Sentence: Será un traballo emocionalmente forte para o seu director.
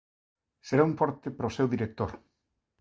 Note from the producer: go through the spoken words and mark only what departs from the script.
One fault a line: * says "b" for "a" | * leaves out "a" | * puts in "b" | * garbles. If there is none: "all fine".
* leaves out "traballo emocionalmente"